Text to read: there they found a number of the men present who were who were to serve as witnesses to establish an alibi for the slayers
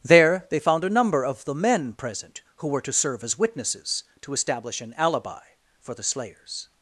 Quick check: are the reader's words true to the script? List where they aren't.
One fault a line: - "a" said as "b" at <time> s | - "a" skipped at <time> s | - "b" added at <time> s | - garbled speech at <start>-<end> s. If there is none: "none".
- "who were" skipped at 2.8 s